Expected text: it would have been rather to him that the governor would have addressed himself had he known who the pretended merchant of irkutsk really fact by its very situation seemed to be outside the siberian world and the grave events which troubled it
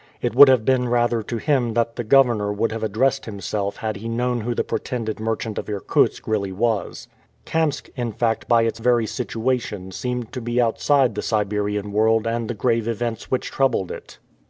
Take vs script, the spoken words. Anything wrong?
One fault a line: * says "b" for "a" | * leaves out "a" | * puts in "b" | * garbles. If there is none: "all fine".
* puts in "was kamsk in"